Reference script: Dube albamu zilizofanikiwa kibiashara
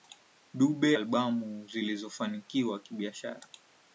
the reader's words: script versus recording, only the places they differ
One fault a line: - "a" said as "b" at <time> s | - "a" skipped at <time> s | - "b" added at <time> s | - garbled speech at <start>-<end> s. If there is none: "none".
none